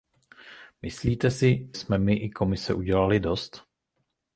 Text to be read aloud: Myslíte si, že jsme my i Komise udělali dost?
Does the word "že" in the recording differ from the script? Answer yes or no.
yes